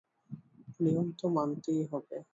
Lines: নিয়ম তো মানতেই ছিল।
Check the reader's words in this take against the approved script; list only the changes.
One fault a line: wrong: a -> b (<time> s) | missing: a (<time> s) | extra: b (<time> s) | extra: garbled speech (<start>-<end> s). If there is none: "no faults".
wrong: ছিল -> হবে (1.9 s)